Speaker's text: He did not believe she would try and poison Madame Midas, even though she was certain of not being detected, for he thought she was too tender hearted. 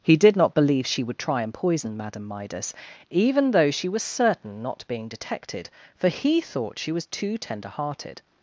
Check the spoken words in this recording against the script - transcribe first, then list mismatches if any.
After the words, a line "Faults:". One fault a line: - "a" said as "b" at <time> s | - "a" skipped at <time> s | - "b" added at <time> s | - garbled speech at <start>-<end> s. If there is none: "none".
He did not believe she would try and poison Madame Midas, even though she was certain not being detected, for he thought she was too tender hearted.
Faults:
- "of" skipped at 4.6 s